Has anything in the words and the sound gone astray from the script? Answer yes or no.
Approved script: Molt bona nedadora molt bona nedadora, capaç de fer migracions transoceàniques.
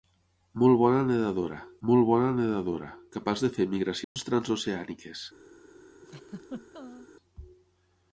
yes